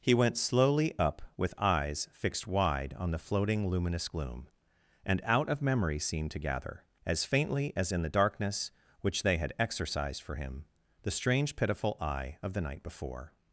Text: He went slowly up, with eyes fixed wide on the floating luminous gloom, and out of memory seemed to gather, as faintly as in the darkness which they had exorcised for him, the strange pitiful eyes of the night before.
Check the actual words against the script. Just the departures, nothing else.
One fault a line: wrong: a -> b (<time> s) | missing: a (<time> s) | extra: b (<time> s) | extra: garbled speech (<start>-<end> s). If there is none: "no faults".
wrong: eyes -> eye (12.0 s)